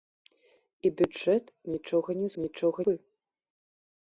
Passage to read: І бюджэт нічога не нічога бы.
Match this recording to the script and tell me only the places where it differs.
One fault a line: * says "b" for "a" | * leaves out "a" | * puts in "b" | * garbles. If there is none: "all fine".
all fine